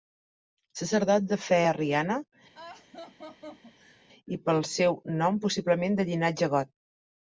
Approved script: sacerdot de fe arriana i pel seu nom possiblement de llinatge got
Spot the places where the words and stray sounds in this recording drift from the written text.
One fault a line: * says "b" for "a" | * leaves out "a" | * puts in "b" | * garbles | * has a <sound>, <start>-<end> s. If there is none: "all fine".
* has a laugh, 2.5-4.0 s